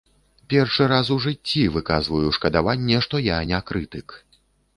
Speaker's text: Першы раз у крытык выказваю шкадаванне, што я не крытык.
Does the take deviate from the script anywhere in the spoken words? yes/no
yes